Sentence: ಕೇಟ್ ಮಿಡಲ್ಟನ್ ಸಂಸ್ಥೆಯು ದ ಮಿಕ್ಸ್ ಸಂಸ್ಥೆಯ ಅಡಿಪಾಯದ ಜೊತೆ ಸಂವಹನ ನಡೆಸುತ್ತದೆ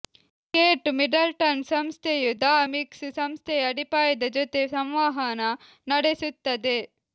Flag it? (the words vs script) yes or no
no